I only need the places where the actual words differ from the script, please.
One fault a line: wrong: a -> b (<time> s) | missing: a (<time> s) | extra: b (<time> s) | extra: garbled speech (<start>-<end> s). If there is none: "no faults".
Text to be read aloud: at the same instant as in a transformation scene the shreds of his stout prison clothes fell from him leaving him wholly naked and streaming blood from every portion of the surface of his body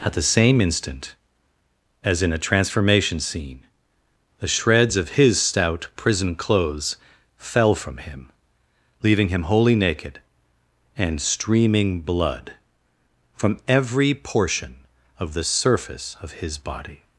no faults